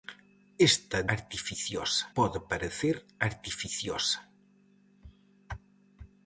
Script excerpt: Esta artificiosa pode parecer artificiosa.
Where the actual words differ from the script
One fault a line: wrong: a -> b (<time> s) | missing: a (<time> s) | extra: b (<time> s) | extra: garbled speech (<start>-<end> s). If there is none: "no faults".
no faults